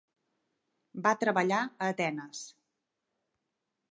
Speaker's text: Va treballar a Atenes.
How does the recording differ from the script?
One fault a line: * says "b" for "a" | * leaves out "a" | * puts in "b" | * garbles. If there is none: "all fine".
all fine